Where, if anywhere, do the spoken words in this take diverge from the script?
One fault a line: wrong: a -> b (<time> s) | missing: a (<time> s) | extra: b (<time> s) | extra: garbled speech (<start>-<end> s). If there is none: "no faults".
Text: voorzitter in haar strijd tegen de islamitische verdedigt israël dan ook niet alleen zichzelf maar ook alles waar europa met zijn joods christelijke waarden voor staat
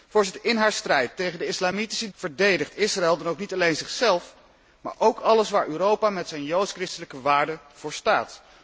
no faults